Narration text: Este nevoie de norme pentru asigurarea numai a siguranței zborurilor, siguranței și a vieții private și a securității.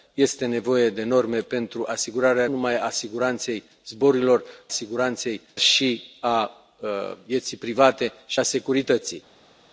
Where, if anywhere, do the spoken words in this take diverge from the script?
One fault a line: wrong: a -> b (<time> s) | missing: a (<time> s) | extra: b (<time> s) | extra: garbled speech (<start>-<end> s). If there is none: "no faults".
no faults